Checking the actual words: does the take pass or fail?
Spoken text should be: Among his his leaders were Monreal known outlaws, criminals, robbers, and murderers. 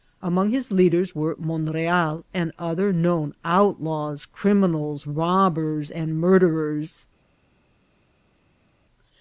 fail